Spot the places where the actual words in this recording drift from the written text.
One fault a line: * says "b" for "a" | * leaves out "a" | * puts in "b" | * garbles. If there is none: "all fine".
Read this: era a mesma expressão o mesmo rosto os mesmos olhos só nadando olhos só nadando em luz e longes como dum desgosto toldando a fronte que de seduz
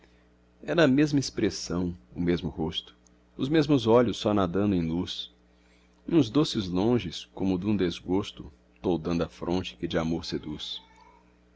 * leaves out "olhos só nadando"
* puts in "uns doces"
* puts in "amor"